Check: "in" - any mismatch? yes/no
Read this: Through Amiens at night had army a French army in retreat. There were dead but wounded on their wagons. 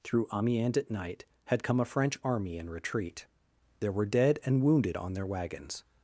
no